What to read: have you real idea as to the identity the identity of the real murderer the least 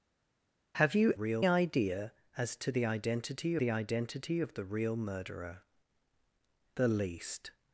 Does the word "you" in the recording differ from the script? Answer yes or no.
no